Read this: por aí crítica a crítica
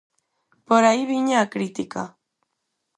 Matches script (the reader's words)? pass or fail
fail